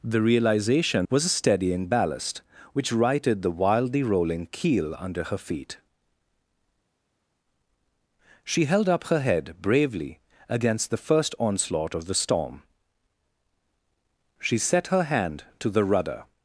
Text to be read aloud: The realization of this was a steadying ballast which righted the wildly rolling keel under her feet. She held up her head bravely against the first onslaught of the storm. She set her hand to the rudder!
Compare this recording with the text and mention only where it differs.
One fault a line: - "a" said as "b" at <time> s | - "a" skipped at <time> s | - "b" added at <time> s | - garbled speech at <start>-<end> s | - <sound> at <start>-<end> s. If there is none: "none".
- "of this" skipped at 1.1 s